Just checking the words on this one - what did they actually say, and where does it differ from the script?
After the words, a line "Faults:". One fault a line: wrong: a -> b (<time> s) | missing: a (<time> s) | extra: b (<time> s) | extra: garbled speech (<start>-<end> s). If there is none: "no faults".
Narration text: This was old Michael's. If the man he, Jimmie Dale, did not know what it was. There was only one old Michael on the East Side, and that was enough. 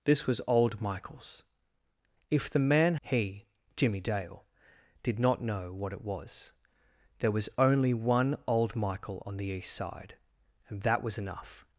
This was old Michael's. If the man he, Jimmie Dale, did not know what it was. There was only one old Michael on the East Side, and that was enough.
Faults:
no faults